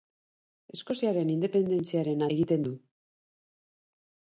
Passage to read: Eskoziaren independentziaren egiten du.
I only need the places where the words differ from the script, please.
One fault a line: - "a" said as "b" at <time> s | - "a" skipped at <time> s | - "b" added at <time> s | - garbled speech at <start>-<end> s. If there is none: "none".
none